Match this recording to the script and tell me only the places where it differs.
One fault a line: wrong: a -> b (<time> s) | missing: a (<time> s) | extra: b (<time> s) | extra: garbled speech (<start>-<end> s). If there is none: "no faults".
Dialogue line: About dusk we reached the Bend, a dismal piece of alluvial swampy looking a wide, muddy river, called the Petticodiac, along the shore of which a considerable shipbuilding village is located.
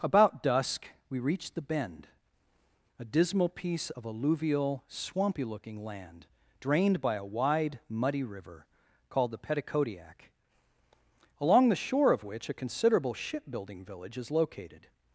extra: land drained by (5.8 s)